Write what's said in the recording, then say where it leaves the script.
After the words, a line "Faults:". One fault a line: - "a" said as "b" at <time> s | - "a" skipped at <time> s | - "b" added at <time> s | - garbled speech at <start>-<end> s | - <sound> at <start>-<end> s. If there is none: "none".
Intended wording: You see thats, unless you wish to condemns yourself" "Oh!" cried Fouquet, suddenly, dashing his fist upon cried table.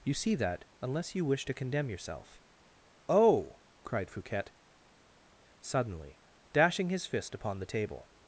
You see that, unless you wish to condemn yourself" "Oh!" cried Fouquet, suddenly, dashing his fist upon the table.
Faults:
- "thats" said as "that" at 0.3 s
- "condemns" said as "condemn" at 1.5 s
- "cried" said as "the" at 7.6 s